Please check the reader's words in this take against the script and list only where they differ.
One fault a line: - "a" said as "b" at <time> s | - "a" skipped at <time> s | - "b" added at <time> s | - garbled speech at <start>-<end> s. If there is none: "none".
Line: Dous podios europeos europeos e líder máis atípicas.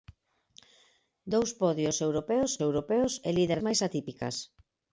none